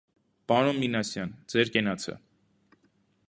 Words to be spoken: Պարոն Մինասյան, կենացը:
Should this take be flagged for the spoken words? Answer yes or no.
yes